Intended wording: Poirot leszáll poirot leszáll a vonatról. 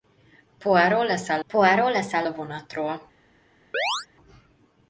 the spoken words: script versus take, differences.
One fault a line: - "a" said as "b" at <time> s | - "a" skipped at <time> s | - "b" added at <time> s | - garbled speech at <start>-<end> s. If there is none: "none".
none